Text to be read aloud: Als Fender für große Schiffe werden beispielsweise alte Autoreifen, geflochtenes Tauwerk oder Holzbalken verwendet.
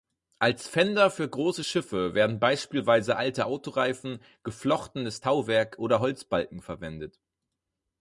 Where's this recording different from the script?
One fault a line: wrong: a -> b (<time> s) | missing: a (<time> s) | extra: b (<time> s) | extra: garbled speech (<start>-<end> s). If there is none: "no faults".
no faults